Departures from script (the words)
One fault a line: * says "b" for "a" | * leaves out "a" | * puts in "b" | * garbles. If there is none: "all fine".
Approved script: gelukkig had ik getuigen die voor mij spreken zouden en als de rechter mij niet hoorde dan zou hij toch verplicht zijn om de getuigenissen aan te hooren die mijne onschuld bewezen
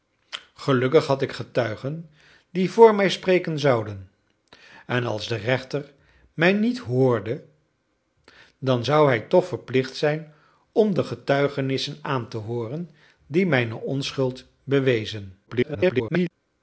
* garbles